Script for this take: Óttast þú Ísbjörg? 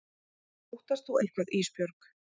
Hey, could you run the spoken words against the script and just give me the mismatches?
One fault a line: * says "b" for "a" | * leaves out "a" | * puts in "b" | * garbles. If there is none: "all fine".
* puts in "eitthvað"